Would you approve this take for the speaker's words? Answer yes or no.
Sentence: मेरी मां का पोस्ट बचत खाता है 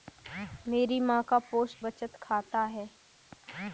yes